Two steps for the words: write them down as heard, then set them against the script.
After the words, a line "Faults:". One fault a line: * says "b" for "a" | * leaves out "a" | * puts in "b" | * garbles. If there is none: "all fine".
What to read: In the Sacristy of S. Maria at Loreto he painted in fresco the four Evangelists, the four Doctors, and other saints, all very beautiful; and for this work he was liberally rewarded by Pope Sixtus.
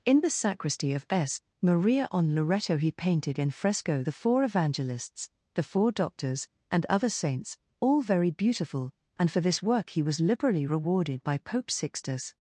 In the Sacristy of S. Maria on Loreto he painted in fresco the four Evangelists, the four Doctors, and other saints, all very beautiful; and for this work he was liberally rewarded by Pope Sixtus.
Faults:
* says "on" for "at"